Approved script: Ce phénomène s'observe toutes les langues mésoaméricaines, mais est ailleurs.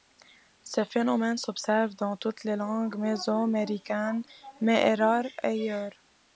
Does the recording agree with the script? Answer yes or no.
no